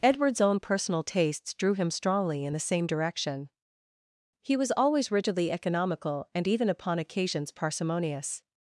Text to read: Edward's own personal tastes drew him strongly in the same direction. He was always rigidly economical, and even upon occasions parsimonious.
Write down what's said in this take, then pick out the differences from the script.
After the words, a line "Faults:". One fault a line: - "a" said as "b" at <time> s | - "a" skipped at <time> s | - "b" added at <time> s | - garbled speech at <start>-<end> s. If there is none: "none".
Edward's own personal tastes drew him strongly in the same direction. He was always rigidly economical, and even upon occasions parsimonious.
Faults:
none